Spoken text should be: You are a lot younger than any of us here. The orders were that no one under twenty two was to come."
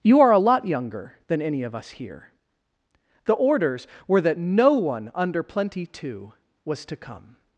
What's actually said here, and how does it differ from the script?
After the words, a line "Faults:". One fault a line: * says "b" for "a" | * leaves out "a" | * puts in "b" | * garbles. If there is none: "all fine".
You are a lot younger than any of us here. The orders were that no one under plenty two was to come."
Faults:
* says "plenty" for "twenty"